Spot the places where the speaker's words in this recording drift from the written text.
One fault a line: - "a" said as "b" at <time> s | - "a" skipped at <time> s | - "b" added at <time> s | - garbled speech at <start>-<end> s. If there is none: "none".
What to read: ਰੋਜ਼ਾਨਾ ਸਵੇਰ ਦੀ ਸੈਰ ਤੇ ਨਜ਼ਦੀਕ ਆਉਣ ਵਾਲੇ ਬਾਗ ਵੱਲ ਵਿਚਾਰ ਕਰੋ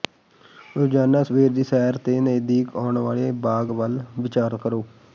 none